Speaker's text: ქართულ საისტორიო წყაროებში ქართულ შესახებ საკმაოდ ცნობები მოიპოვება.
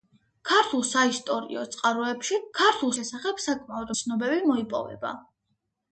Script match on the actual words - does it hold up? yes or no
yes